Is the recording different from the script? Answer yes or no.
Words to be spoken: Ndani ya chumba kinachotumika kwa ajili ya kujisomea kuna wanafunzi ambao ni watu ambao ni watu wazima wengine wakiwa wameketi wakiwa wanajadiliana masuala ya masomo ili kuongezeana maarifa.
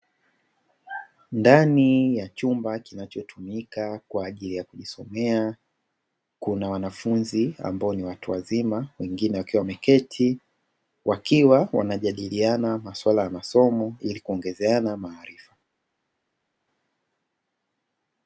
yes